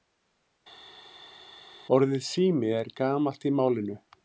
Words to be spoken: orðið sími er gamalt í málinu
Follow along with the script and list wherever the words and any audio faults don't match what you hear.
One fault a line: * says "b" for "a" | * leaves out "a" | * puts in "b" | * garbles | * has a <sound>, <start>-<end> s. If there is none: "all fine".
all fine